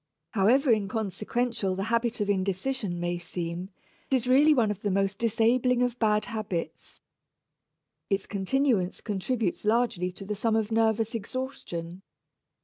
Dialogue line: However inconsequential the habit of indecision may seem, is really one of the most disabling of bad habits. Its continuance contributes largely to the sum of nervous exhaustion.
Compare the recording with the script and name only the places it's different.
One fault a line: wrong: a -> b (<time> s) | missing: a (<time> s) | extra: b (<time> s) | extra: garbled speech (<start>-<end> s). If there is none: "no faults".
no faults